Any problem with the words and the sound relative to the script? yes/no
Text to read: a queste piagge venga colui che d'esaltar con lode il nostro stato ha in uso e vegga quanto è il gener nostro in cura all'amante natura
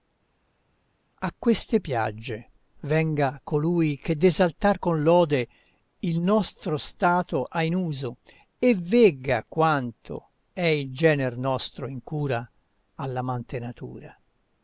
no